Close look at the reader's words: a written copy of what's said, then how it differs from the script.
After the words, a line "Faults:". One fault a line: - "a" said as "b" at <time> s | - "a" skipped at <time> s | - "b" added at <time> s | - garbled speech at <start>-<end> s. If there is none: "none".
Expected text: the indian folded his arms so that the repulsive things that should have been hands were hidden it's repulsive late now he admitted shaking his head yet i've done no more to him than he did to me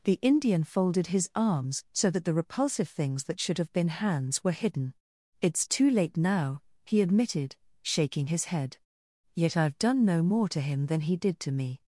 the indian folded his arms so that the repulsive things that should have been hands were hidden it's too late now he admitted shaking his head yet i've done no more to him than he did to me
Faults:
- "repulsive" said as "too" at 5.7 s